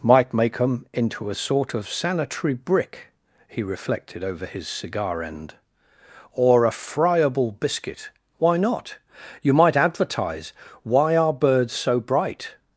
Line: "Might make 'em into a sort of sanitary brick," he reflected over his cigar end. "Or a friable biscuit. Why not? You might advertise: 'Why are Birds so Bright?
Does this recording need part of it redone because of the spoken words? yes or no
no